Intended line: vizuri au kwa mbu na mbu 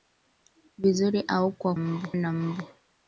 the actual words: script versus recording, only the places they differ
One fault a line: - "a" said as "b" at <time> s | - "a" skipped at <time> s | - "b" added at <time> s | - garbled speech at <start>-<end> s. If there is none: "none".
none